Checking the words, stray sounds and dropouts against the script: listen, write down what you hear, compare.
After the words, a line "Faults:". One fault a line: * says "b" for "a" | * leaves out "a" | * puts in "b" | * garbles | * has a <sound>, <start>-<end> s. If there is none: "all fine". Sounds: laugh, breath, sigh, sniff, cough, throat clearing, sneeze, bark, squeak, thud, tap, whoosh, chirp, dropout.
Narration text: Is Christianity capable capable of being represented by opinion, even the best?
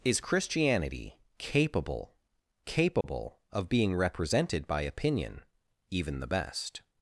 Is Christianity capable capable of being represented by opinion, even the best?
Faults:
* has a dropout, 3.0-3.0 s